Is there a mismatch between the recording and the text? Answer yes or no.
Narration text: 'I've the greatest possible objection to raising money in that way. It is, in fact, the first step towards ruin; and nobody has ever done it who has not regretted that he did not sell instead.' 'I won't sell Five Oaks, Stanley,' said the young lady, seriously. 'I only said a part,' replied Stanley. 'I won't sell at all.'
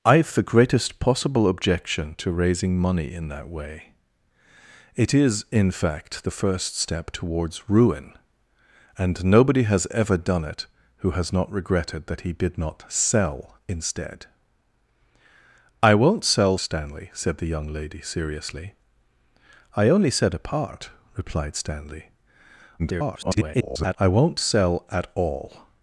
yes